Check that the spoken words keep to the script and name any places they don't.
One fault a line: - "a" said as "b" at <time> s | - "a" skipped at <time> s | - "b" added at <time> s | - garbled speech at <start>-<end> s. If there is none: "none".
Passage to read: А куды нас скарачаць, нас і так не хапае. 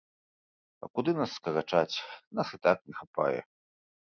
none